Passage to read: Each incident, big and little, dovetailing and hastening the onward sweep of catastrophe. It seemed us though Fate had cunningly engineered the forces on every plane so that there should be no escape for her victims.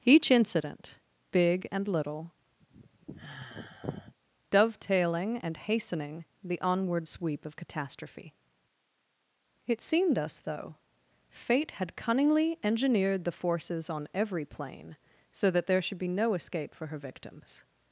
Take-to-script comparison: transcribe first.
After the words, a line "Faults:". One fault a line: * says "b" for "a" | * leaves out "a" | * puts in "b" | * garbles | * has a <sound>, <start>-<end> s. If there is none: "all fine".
Each incident, big and little, dovetailing and hastening the onward sweep of catastrophe. It seemed us though Fate had cunningly engineered the forces on every plane so that there should be no escape for her victims.
Faults:
* has a sigh, 2.6-4.1 s